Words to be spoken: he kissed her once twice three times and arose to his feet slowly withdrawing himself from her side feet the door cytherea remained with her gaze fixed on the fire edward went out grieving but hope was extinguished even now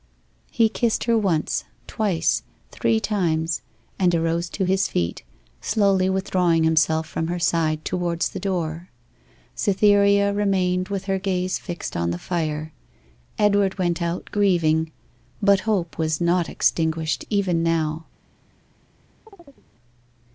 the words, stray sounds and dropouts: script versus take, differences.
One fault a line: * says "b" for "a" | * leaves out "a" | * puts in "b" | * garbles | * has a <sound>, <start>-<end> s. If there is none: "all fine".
* says "towards" for "feet"
* puts in "not"
* has a chirp, 19.3-19.6 s